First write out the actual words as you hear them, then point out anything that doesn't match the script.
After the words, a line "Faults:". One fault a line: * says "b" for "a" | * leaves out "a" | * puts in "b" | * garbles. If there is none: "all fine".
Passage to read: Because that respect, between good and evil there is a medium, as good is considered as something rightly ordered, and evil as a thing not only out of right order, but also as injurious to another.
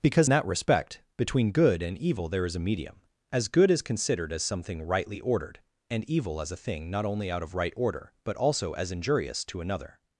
Because that respect, between good and evil there is a medium, as good is considered as something rightly ordered, and evil as a thing not only out of right order, but also as injurious to another.
Faults:
all fine